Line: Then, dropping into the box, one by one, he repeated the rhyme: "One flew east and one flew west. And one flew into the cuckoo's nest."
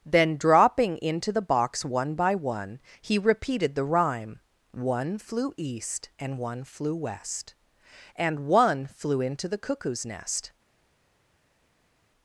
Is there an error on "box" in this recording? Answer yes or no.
no